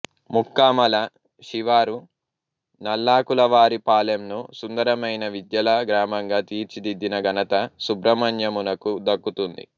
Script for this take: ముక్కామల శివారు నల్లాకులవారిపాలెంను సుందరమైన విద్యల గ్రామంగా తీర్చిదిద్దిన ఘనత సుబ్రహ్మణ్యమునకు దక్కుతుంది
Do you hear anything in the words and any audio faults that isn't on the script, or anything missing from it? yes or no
no